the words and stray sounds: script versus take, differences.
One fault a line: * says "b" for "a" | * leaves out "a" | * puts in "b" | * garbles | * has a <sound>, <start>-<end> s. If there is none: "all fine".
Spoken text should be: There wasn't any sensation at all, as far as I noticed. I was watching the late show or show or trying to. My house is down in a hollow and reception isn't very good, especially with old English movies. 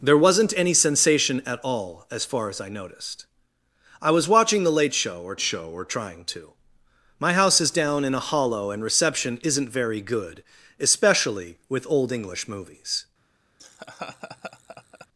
* has a laugh, 13.6-15.1 s